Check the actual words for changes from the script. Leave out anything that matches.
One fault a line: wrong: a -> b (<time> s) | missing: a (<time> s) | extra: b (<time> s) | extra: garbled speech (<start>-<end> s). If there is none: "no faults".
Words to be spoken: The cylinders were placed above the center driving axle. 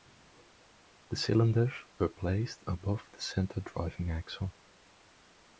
no faults